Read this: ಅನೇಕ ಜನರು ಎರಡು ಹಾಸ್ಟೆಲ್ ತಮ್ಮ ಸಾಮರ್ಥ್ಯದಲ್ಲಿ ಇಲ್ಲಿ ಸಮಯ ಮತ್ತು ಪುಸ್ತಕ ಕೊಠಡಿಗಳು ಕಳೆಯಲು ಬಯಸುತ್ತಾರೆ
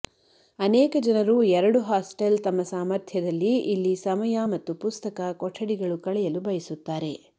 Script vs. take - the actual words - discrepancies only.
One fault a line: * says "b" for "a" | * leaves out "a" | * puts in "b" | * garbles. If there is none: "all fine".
all fine